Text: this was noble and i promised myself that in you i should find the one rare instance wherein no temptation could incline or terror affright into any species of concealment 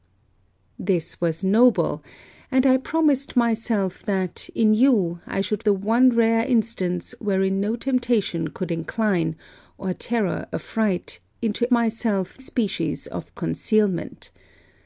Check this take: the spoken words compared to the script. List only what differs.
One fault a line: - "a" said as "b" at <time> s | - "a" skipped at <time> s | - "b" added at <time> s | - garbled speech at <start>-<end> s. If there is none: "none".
- "find" skipped at 5.6 s
- "any" said as "myself" at 11.7 s